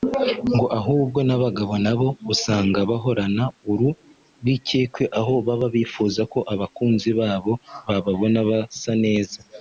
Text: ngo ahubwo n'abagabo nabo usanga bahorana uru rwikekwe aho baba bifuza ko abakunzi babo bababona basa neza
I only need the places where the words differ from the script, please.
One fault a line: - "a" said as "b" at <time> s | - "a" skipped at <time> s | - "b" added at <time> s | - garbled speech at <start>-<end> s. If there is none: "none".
none